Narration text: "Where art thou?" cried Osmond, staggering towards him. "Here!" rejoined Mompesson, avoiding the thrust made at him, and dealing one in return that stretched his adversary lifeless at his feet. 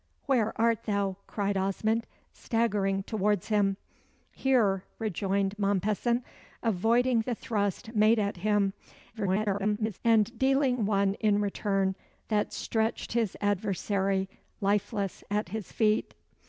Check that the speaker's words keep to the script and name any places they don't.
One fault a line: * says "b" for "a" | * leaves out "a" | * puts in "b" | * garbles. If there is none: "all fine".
* garbles